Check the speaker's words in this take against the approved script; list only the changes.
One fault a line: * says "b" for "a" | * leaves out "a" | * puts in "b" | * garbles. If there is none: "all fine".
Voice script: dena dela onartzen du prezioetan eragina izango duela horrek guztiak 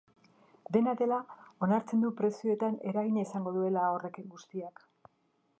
all fine